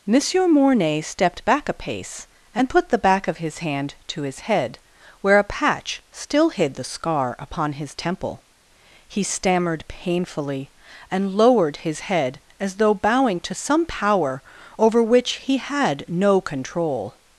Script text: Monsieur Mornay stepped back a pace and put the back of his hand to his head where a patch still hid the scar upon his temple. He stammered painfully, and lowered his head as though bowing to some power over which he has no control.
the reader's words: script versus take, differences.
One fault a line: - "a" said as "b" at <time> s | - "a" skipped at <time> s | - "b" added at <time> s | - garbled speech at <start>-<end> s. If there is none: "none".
- "has" said as "had" at 15.6 s